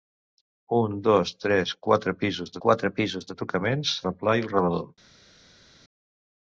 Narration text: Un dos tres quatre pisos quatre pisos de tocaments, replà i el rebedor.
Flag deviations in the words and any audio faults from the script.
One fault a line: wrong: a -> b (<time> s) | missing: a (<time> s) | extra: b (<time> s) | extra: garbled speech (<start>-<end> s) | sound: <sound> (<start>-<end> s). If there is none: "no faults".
no faults